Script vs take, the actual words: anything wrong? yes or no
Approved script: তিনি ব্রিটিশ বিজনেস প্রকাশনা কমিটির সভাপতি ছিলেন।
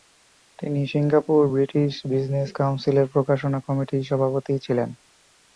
yes